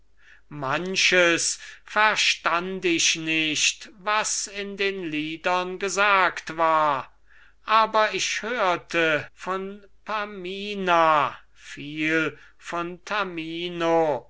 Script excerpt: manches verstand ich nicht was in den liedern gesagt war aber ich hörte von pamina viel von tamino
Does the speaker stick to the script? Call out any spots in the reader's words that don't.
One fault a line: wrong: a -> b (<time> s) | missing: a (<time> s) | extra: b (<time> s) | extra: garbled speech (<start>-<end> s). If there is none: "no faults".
no faults